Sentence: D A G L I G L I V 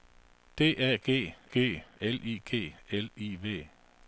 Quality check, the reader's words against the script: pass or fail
fail